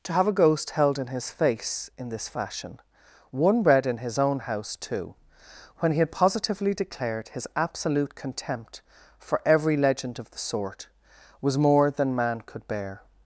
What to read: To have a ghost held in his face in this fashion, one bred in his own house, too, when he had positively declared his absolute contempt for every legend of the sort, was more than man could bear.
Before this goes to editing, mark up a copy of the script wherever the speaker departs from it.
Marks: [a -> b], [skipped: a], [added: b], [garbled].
To have a ghost held in his face in this fashion, one bred in his own house, too, when he had positively declared his absolute contempt for every legend of the sort, was more than man could bear.